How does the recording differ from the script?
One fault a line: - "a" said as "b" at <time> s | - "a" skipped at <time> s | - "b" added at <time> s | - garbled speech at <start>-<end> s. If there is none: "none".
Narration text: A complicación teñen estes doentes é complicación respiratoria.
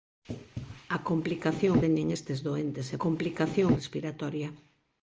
none